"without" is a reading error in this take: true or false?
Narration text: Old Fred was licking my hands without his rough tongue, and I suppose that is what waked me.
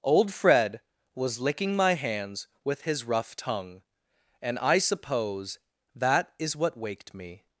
true